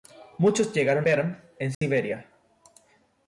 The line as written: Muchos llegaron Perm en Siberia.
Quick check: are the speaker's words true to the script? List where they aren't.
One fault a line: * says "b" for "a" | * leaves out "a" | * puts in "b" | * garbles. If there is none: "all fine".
all fine